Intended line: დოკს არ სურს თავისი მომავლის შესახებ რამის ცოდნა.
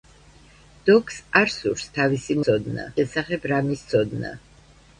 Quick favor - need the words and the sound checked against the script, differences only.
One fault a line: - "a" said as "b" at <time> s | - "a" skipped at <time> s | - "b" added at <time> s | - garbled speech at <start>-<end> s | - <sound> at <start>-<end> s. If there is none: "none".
- "მომავლის" said as "ცოდნა" at 2.5 s